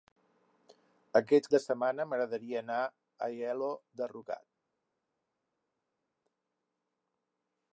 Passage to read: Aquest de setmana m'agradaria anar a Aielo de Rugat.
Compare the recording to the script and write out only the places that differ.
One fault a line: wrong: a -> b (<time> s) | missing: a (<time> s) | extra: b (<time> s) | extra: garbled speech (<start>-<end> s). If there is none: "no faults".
no faults